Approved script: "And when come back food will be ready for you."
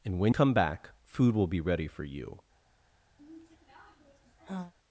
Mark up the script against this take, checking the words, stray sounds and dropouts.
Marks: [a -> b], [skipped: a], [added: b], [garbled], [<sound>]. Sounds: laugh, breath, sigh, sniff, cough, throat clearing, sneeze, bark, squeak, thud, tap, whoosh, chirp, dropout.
"And when come back food will be ready for you." [sigh]